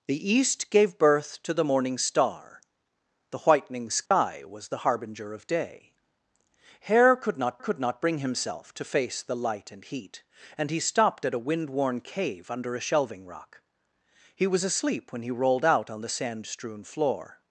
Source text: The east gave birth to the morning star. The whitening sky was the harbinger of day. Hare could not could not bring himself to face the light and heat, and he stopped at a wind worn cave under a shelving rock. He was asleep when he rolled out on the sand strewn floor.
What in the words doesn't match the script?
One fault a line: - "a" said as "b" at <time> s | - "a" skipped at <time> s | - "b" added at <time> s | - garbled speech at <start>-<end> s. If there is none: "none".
none